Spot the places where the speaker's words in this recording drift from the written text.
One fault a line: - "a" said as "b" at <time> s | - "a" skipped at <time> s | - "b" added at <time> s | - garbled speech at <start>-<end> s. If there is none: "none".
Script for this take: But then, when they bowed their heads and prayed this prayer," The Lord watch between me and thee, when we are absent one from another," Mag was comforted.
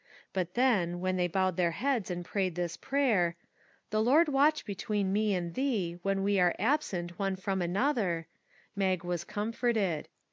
none